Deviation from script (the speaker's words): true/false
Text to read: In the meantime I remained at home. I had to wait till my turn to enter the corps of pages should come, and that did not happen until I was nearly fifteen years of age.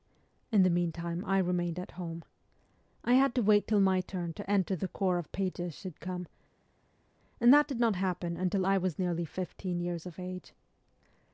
false